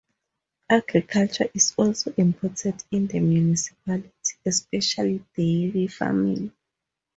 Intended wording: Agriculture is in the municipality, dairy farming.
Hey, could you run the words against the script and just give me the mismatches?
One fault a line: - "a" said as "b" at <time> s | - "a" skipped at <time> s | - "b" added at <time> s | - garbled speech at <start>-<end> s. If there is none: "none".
- "also important" added at 1.8 s
- "especially" added at 4.5 s